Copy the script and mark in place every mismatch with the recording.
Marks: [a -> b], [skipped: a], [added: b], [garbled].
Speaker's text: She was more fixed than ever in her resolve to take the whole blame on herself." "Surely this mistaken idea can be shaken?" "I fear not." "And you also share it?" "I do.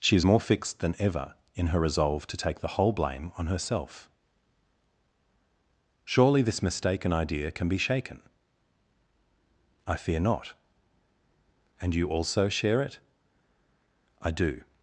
She [was -> is] more fixed than ever in her resolve to take the whole blame on herself." "Surely this mistaken idea can be shaken?" "I fear not." "And you also share it?" "I do.